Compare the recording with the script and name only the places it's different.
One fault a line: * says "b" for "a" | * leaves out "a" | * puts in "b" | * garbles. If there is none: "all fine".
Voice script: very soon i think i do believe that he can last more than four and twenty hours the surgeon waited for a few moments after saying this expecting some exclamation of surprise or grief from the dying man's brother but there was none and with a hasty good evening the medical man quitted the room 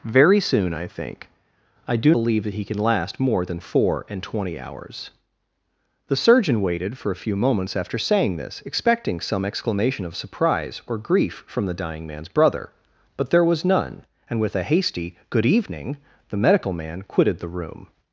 all fine